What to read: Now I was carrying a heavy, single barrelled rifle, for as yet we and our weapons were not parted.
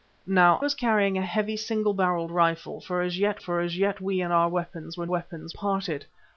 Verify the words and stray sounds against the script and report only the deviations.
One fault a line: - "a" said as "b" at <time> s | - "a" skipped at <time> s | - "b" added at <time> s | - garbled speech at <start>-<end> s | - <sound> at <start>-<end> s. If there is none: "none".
- "I" skipped at 0.6 s
- "for as yet" added at 3.4 s
- "not" said as "weapons" at 5.0 s